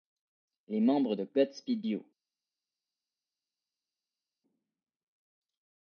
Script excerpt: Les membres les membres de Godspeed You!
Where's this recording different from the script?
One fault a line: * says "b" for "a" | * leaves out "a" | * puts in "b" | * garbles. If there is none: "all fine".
* leaves out "les membres"